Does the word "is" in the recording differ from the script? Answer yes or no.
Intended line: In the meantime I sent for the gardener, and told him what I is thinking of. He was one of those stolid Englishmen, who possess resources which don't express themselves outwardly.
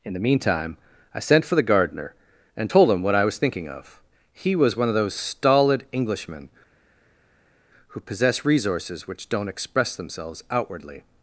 yes